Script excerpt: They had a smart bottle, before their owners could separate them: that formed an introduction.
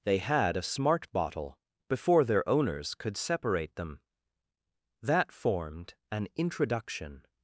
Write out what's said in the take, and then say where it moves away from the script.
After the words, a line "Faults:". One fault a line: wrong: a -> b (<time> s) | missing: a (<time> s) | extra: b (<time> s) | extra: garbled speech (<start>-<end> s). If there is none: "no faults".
They had a smart bottle, before their owners could separate them: that formed an introduction.
Faults:
no faults